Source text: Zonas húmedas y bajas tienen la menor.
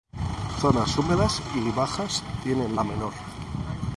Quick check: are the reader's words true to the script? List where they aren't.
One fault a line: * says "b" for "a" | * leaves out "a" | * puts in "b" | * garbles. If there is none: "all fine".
all fine